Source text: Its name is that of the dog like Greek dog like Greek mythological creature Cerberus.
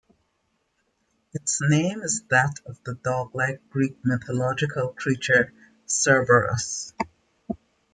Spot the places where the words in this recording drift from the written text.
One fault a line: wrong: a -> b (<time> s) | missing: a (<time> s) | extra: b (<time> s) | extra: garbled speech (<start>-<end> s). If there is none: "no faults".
missing: dog like Greek (4.0 s)